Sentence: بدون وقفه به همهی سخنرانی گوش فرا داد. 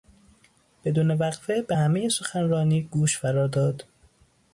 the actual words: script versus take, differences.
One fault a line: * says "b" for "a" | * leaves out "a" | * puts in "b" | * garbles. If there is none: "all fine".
all fine